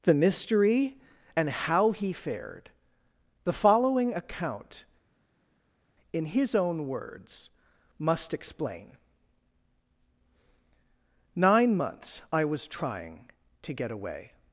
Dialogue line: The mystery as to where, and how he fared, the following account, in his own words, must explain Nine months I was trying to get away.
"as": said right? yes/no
no